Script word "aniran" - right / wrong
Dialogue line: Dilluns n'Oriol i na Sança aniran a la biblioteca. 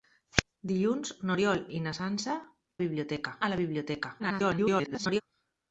wrong